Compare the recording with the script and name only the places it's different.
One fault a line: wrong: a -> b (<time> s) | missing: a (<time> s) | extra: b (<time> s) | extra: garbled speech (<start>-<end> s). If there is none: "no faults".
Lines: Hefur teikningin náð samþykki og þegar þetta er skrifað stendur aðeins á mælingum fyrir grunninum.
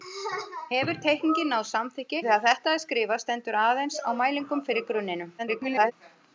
missing: og (2.2 s)
extra: garbled speech (5.4-5.9 s)